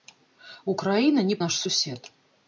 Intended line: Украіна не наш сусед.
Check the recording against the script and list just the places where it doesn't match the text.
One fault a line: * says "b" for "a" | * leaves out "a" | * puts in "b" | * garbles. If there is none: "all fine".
all fine